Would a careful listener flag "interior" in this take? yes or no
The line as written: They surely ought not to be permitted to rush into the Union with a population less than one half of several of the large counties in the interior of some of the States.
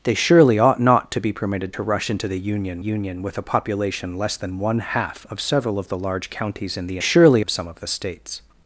yes